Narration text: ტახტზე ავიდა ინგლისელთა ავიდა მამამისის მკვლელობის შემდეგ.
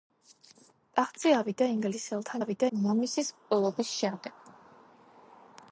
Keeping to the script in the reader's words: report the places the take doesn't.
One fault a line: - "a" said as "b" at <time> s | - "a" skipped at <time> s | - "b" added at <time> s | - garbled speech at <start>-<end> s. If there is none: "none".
none